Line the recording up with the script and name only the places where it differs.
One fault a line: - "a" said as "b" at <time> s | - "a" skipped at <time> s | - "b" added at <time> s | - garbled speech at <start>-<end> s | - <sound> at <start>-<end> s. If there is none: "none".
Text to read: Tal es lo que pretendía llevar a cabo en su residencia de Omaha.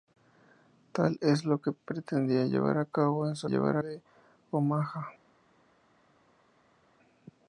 - "residencia" said as "llevar" at 3.4 s